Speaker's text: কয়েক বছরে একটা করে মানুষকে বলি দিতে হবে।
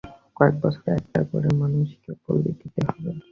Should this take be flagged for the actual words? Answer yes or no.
no